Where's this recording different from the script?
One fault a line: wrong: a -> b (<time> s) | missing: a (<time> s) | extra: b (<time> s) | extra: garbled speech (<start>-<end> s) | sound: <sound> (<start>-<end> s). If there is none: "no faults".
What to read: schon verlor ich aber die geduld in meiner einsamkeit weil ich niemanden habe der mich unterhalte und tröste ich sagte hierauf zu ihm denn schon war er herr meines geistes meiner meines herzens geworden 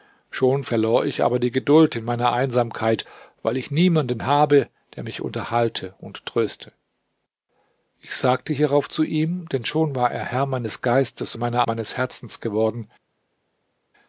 no faults